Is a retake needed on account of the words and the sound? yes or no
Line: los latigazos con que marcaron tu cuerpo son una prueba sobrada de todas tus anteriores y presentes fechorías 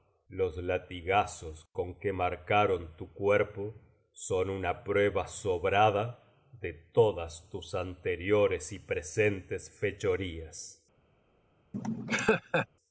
yes